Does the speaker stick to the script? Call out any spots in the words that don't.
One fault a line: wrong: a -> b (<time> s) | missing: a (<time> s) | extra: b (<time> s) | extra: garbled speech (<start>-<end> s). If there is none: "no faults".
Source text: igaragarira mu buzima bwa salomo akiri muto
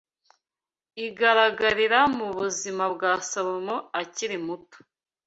no faults